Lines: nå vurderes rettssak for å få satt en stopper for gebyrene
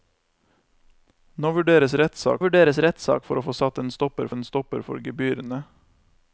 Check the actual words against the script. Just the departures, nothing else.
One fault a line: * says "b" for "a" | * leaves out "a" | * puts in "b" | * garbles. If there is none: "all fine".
* puts in "vurderes rettssak"
* puts in "en stopper"